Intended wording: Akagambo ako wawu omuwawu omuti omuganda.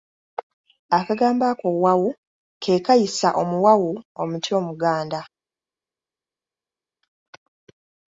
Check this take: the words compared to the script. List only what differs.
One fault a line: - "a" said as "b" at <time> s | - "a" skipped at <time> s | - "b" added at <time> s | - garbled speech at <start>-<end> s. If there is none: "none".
- "ke kayisa" added at 2.6 s